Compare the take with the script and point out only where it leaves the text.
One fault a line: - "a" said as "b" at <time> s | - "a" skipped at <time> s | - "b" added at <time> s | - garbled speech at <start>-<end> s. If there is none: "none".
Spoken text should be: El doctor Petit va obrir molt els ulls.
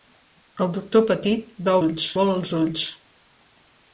- "obrir" said as "ulls" at 1.8 s